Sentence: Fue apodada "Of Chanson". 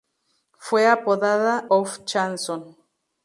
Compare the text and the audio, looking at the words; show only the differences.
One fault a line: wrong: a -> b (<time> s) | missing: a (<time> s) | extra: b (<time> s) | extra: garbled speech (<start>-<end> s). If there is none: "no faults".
no faults